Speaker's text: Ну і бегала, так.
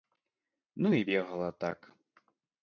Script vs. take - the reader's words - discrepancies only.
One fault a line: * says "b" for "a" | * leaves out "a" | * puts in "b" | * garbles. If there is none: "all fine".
all fine